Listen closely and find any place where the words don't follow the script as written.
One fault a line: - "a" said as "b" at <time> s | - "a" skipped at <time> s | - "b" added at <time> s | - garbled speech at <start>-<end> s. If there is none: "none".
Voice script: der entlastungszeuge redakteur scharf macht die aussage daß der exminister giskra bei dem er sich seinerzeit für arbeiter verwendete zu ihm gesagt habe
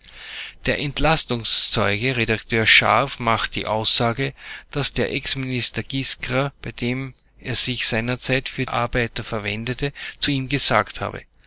none